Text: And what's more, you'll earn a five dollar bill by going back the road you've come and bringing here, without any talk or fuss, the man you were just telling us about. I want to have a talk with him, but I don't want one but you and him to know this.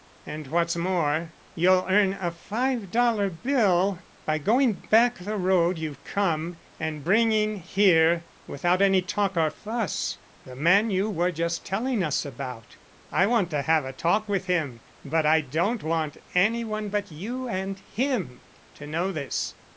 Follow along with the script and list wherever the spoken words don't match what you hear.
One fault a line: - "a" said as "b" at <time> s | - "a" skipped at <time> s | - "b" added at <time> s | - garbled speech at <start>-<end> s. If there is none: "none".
- "any" added at 16.3 s